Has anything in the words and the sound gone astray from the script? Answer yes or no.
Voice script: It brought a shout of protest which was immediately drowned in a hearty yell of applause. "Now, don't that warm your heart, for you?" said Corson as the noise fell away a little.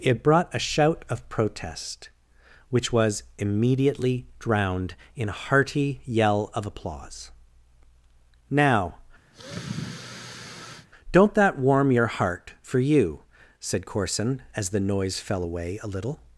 yes